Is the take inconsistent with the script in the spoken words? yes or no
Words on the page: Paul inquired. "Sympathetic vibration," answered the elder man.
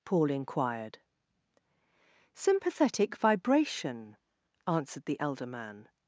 no